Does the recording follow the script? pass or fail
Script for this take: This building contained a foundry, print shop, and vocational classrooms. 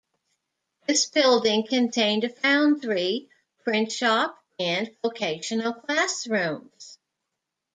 pass